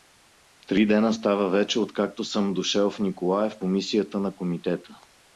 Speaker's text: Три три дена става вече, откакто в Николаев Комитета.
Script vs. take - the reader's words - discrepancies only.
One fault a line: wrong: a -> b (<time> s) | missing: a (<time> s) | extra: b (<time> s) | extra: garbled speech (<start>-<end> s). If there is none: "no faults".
missing: три (0.8 s)
extra: съм дошел (2.2 s)
extra: по мисията на (3.6 s)